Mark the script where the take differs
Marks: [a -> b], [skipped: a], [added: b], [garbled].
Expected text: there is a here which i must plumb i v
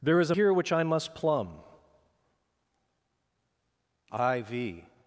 there is a here which i must plumb i v